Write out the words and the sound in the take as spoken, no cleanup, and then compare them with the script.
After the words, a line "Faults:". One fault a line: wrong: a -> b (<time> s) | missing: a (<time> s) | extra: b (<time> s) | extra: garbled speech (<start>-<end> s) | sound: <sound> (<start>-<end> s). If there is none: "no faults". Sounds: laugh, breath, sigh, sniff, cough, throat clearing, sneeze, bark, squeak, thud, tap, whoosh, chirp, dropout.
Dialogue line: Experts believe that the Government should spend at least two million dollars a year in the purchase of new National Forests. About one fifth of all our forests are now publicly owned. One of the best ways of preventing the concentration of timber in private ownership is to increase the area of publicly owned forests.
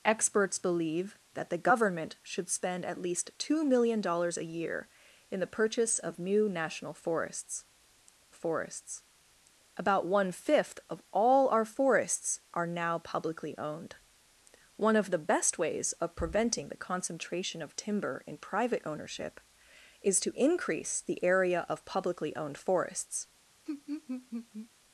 Experts believe that the Government should spend at least two million dollars a year in the purchase of new National Forests Forests. About one fifth of all our forests are now publicly owned. One of the best ways of preventing the concentration of timber in private ownership is to increase the area of publicly owned forests.
Faults:
extra: Forests (8.3 s)
sound: laugh (23.7-24.7 s)